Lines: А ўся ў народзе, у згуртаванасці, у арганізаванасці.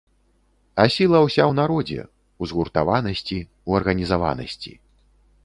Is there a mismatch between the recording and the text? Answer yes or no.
yes